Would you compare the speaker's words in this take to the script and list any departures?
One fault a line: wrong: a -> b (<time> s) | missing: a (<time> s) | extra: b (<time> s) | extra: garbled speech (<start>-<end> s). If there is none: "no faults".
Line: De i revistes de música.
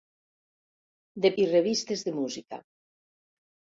no faults